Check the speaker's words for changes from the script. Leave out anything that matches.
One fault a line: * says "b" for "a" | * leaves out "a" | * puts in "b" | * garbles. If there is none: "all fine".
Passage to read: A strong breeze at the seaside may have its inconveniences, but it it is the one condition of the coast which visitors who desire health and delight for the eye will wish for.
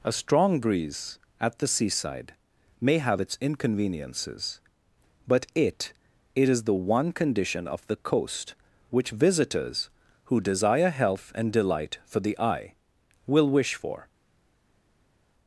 all fine